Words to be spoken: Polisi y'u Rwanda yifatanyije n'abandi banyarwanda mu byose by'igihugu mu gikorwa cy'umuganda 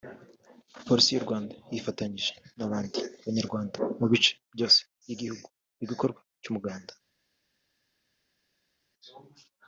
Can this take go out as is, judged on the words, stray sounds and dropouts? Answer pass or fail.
fail